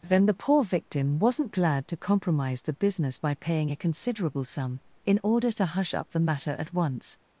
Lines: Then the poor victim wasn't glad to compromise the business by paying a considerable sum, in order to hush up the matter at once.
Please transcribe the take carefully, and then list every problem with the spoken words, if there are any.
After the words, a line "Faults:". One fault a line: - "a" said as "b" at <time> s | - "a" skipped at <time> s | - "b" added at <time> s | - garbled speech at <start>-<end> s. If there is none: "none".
Then the poor victim wasn't glad to compromise the business by paying a considerable sum, in order to hush up the matter at once.
Faults:
none